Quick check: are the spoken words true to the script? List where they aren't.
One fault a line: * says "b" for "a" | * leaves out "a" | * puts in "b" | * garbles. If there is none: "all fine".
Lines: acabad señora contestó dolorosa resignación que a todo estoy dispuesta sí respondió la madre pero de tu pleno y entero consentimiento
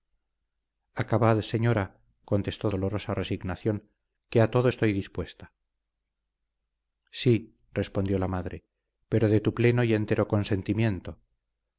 all fine